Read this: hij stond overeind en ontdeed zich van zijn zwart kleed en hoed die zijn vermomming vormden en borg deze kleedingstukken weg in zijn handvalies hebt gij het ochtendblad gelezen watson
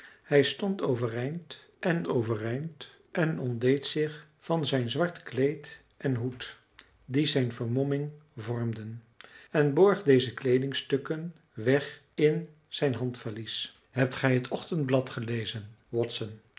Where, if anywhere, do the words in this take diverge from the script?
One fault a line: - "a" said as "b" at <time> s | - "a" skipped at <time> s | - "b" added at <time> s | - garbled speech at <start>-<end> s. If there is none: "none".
- "overeind en" added at 2.1 s